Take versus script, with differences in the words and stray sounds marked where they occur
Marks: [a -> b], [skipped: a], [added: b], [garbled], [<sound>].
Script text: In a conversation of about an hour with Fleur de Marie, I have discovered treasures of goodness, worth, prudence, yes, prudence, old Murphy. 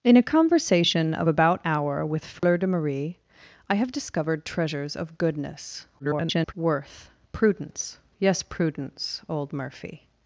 In a conversation of about [skipped: an] hour with Fleur [dropout] de Marie, I have discovered treasures of goodness, [garbled] worth, prudence, yes, prudence, old Murphy.